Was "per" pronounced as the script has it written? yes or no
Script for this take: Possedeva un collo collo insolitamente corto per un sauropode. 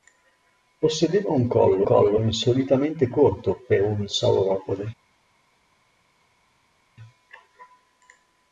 yes